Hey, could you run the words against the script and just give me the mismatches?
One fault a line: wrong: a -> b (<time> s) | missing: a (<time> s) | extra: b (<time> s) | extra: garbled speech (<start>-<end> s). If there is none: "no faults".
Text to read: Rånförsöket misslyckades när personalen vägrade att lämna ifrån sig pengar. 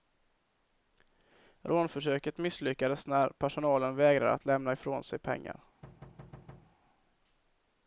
no faults